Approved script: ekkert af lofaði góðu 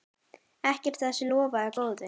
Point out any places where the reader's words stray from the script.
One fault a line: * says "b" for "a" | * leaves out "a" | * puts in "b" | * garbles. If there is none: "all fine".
* puts in "þessu"